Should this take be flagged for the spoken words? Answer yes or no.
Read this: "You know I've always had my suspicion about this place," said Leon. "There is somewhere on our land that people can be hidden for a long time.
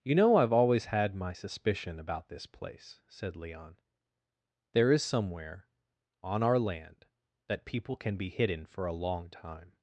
no